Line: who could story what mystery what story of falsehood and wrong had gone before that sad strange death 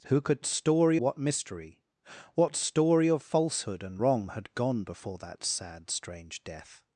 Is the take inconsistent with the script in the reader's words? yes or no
no